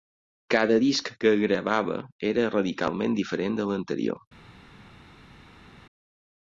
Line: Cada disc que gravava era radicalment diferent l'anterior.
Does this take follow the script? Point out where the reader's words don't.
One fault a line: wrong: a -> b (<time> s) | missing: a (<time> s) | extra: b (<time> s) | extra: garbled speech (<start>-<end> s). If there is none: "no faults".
extra: de (3.6 s)